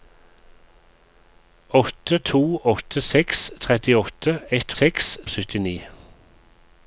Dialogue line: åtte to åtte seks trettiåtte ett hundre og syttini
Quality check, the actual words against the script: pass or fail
fail